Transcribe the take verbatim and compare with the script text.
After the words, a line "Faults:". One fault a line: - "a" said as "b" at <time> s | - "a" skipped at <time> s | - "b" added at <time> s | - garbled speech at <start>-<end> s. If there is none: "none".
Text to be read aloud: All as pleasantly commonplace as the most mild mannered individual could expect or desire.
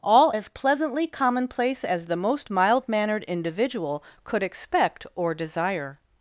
All as pleasantly commonplace as the most mild mannered individual could expect or desire.
Faults:
none